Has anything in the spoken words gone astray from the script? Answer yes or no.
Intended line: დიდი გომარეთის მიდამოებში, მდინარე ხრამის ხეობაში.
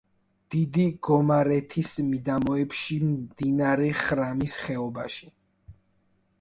no